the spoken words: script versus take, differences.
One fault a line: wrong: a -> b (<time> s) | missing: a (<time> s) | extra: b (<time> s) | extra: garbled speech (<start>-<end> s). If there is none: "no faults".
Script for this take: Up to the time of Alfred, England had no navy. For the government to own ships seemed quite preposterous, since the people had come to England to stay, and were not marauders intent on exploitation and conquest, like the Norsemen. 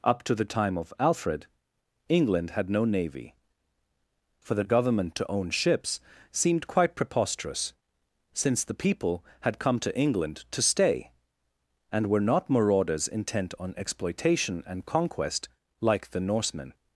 no faults